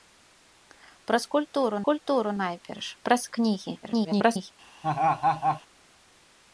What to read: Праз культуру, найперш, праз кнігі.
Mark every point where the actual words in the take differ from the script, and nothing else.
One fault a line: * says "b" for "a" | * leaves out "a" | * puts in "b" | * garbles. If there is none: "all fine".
* puts in "культуру"
* garbles